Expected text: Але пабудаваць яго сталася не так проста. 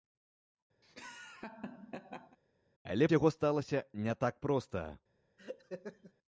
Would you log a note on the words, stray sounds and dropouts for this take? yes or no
yes